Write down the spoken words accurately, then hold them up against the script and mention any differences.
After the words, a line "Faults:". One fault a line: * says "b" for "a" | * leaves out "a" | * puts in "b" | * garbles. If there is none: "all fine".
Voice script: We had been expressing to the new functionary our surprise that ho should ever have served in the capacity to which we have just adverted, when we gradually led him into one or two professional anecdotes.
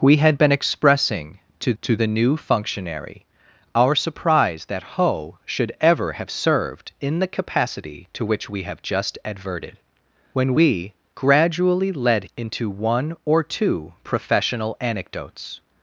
We had been expressing to to the new functionary our surprise that ho should ever have served in the capacity to which we have just adverted, when we gradually led into one or two professional anecdotes.
Faults:
* puts in "to"
* leaves out "him"